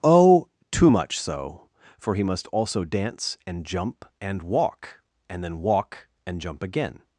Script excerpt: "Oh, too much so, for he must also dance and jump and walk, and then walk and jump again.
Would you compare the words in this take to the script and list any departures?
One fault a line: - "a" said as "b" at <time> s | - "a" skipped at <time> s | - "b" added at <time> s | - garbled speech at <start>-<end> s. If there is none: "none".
none